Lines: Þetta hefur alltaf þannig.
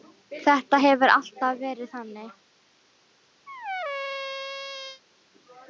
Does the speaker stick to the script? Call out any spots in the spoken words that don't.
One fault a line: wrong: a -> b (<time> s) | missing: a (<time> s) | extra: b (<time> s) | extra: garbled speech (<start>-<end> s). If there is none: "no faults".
extra: verið (1.7 s)